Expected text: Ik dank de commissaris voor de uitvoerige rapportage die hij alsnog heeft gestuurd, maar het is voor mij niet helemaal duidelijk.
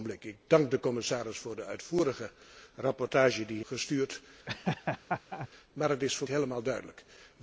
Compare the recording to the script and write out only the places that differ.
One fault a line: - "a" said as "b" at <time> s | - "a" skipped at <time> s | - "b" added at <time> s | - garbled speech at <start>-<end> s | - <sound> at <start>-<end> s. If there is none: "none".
- "hij alsnog heeft" skipped at 3.6 s
- laugh at 4.5-5.5 s
- "mij niet" skipped at 6.3 s